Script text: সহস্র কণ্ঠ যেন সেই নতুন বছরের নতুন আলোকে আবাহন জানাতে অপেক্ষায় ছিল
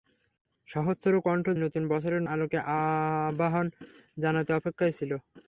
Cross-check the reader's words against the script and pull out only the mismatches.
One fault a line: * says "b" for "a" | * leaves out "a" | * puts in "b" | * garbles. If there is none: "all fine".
* leaves out "যেন সেই"
* leaves out "নতুন"